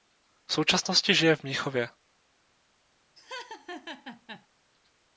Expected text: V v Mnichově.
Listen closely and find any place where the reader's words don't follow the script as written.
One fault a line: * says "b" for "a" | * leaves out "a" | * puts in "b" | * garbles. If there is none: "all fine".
* puts in "současnosti žije"